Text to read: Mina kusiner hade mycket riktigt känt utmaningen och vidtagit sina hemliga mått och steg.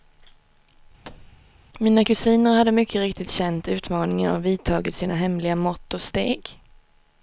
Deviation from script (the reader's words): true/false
false